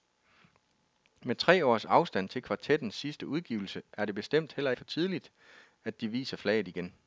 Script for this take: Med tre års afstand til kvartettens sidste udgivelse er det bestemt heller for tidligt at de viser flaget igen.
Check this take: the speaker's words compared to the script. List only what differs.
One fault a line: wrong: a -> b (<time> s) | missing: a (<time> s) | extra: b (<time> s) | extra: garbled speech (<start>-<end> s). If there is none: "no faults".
no faults